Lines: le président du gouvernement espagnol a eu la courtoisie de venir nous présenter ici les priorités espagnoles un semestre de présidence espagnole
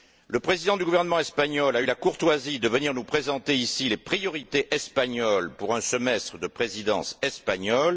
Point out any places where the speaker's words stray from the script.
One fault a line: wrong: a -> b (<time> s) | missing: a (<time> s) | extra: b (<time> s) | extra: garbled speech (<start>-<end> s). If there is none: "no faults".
extra: pour (5.5 s)